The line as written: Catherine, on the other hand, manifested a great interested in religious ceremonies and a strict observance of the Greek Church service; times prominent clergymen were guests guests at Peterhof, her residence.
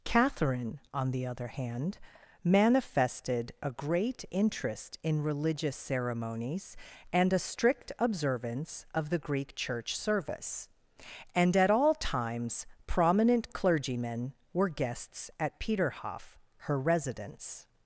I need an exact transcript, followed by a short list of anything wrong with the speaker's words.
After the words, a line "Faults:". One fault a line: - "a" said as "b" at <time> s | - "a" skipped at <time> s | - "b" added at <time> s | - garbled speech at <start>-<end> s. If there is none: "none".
Catherine, on the other hand, manifested a great interest in religious ceremonies and a strict observance of the Greek Church service; and at all times prominent clergymen were guests at Peterhof, her residence.
Faults:
- "interested" said as "interest" at 4.3 s
- "and at all" added at 11.3 s
- "guests" skipped at 15.3 s